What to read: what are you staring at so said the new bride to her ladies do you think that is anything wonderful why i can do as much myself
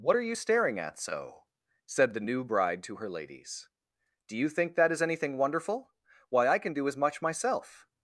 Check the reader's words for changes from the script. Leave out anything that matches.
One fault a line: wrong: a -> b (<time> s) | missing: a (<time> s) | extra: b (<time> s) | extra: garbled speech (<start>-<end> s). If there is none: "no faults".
no faults